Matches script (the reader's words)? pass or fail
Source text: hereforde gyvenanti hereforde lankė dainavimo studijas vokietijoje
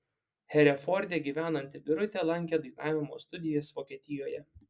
fail